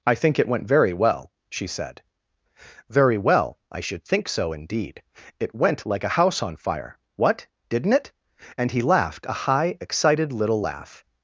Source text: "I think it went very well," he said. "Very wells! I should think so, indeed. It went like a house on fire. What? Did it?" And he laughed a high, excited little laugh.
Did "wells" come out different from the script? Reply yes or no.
yes